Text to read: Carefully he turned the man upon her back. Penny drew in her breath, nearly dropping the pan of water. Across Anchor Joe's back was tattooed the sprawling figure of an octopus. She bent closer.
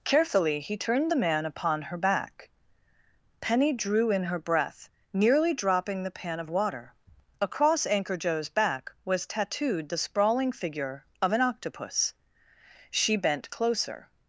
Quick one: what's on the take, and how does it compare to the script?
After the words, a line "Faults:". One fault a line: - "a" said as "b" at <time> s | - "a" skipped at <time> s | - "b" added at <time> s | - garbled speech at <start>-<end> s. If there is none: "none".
Carefully he turned the man upon her back. Penny drew in her breath, nearly dropping the pan of water. Across Anchor Joe's back was tattooed the sprawling figure of an octopus. She bent closer.
Faults:
none